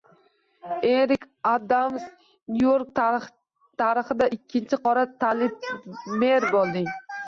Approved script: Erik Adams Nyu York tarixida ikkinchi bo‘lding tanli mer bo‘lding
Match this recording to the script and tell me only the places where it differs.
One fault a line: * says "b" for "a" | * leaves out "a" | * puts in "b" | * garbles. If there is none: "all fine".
* says "qora" for "bo‘lding"